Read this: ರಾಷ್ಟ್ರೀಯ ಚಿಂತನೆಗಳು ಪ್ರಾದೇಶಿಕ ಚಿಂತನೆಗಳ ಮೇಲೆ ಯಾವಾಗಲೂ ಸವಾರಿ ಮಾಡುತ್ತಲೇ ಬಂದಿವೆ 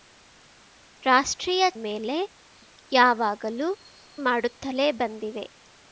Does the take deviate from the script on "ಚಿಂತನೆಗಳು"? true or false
true